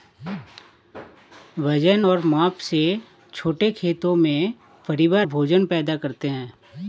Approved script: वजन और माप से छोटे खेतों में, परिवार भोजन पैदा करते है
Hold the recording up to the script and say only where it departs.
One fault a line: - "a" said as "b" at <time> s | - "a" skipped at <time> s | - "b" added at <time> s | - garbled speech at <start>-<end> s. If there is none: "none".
none